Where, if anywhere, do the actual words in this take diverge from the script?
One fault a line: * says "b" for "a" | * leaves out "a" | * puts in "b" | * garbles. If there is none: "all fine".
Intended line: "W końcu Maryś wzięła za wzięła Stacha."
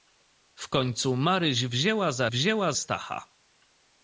all fine